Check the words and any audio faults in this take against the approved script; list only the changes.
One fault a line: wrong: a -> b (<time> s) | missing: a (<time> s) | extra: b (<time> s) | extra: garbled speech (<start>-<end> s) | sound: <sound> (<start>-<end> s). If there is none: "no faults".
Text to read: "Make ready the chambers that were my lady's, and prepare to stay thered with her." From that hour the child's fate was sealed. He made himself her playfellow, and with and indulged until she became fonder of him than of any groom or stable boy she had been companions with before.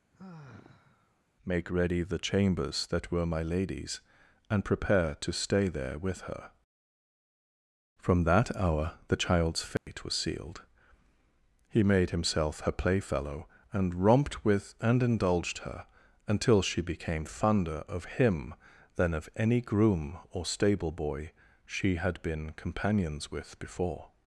sound: sigh (0.1-1.2 s)
wrong: thered -> there (5.7 s)
sound: dropout (9.8-9.9 s)
extra: romped (13.9 s)
extra: her (15.6 s)